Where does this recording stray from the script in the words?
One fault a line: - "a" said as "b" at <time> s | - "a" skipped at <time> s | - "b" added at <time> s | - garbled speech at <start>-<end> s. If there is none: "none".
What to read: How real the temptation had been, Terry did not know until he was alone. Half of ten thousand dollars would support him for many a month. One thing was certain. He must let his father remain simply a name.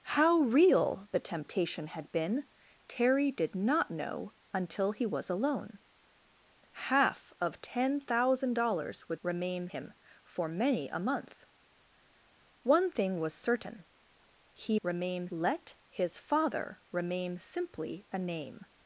- "support" said as "remain" at 9.2 s
- "must" said as "remain" at 14.8 s